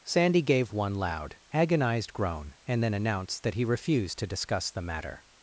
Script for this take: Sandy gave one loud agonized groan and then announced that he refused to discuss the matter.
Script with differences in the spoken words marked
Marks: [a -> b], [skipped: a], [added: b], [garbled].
Sandy gave one loud agonized groan and then announced that he refused to discuss the matter.